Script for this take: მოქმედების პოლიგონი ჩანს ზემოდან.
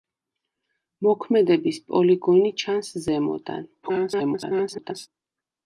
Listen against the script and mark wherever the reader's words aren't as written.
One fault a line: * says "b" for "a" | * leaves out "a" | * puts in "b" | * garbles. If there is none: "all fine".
* garbles